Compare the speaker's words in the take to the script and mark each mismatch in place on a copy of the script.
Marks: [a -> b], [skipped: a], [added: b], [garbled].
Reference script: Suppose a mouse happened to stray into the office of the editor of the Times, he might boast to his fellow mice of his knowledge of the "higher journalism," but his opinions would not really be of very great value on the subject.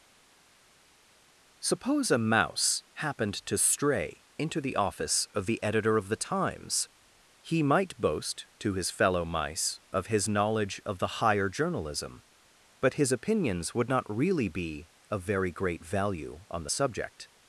Suppose a mouse happened to stray into the office of the editor of the Times, he might boast to his fellow mice of his knowledge of the "higher journalism," but his opinions would not really be of very great value on the subject.